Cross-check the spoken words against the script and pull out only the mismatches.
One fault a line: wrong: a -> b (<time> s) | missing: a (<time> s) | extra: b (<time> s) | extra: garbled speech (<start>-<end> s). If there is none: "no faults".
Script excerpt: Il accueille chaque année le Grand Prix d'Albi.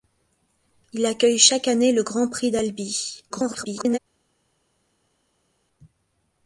extra: garbled speech (3.3-4.0 s)